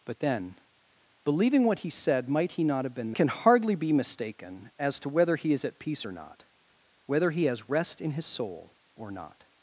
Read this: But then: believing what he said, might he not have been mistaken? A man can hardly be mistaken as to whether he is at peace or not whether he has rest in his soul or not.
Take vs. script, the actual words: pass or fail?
fail